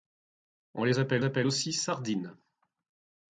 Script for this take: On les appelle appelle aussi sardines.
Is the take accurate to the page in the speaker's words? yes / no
yes